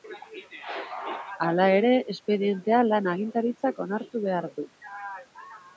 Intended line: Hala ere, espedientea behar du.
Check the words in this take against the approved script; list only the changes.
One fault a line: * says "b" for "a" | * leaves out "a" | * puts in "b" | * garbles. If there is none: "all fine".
* puts in "lan agintaritzak onartu"